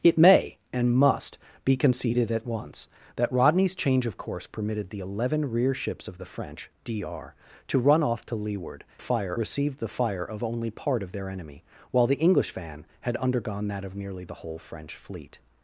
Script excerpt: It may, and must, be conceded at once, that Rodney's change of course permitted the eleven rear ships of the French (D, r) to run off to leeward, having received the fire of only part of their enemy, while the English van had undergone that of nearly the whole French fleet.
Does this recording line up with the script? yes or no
no